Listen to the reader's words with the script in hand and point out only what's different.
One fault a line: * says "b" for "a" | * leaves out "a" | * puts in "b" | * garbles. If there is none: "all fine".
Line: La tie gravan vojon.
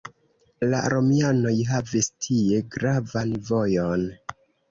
* puts in "romianoj havis"